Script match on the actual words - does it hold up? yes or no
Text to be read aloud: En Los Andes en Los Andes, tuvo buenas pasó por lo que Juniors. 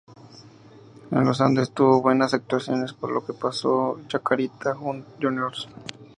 no